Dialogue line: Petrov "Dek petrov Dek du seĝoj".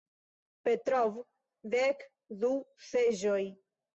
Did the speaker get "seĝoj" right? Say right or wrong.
right